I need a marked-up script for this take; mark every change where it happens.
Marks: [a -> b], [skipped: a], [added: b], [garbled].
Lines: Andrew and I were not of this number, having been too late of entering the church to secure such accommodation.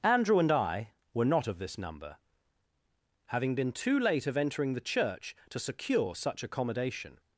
Andrew and I were not of this number, having been too late of entering the church to secure such accommodation.